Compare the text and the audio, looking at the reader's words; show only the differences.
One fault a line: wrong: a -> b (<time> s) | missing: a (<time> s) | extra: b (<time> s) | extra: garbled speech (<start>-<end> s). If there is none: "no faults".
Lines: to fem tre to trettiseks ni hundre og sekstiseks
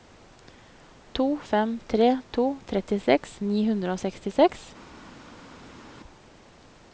no faults